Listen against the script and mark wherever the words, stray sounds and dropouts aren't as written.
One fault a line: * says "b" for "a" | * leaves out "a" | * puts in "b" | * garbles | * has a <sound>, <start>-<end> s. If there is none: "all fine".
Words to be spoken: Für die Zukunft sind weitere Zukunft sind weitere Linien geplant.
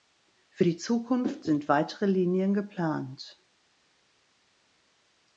* leaves out "Zukunft sind weitere"